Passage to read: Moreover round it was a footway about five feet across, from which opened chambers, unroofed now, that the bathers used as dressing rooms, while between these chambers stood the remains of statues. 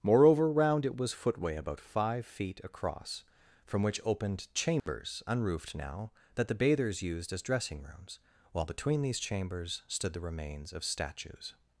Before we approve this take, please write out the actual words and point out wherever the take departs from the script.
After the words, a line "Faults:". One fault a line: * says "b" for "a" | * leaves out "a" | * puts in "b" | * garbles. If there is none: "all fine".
Moreover round it was footway about five feet across, from which opened chambers, unroofed now, that the bathers used as dressing rooms, while between these chambers stood the remains of statues.
Faults:
* leaves out "a"